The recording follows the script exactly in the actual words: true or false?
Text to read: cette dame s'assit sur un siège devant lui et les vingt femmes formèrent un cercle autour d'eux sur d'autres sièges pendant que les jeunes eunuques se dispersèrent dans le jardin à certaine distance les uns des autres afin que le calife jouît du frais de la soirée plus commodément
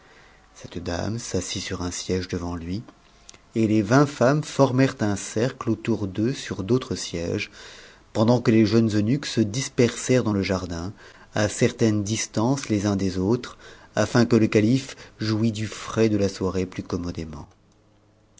true